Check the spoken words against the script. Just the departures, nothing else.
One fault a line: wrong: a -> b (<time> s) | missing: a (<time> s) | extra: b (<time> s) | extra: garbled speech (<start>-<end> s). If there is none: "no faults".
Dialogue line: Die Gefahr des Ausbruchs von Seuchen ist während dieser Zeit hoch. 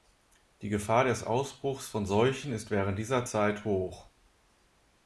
no faults